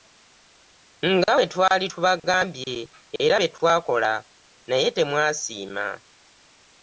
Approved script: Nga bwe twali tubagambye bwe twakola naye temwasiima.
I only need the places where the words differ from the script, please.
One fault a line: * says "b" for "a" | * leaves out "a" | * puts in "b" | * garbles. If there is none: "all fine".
* puts in "era"